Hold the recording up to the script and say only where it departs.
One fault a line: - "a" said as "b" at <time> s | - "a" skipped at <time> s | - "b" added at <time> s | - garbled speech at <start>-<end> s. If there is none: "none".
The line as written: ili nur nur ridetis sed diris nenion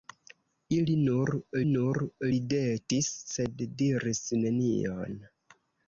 none